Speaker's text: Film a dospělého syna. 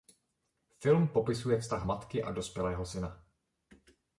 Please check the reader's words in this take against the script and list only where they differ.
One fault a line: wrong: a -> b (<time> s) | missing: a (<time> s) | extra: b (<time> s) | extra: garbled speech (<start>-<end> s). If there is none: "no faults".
extra: popisuje vztah matky (1.1 s)